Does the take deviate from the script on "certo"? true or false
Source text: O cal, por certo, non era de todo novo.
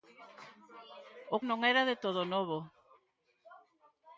true